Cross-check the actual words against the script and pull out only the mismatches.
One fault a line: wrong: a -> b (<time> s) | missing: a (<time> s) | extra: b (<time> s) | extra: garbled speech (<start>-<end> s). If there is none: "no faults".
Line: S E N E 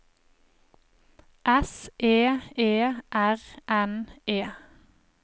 extra: E R (2.6 s)